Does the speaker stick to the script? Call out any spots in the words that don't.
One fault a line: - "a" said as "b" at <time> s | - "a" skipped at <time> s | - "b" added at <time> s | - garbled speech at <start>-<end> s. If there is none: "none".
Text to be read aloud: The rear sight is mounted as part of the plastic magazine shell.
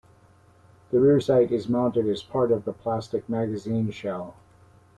none